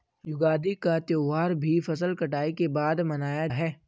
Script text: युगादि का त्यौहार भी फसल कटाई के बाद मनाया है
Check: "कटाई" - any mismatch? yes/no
no